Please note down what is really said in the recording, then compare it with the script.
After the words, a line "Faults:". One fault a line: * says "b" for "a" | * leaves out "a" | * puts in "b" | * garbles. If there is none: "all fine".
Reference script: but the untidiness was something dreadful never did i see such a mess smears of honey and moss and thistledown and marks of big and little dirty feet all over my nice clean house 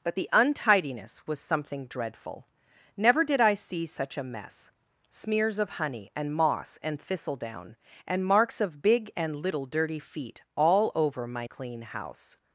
but the untidiness was something dreadful never did i see such a mess smears of honey and moss and thistledown and marks of big and little dirty feet all over my clean house
Faults:
* leaves out "nice"